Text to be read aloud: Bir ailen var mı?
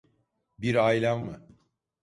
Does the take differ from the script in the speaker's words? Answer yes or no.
yes